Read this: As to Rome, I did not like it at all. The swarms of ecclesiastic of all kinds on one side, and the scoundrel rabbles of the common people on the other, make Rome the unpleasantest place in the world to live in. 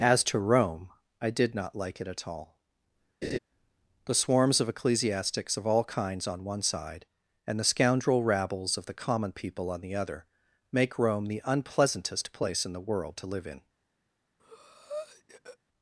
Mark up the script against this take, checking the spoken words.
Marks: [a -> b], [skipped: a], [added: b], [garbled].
As to Rome, I did not like it at all. The swarms of [ecclesiastic -> ecclesiastics] of all kinds on one side, and the scoundrel rabbles of the common people on the other, make Rome the unpleasantest place in the world to live in.